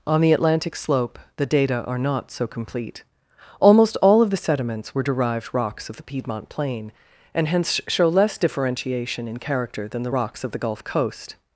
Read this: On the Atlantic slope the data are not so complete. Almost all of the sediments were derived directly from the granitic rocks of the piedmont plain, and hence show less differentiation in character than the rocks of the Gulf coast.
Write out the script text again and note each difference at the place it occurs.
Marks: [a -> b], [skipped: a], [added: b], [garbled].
On the Atlantic slope the data are not so complete. Almost all of the sediments were derived [skipped: directly from the granitic] rocks of the piedmont plain, and hence show less differentiation in character than the rocks of the Gulf coast.